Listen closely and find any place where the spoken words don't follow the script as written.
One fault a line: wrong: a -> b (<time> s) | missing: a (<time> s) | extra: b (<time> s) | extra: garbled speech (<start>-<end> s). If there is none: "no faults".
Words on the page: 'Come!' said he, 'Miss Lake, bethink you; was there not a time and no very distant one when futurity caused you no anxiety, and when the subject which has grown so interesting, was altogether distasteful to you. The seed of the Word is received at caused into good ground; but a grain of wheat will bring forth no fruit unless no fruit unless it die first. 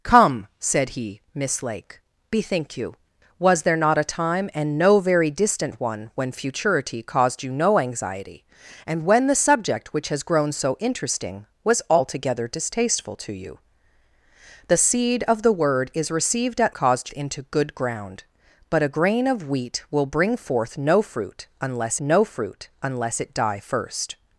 no faults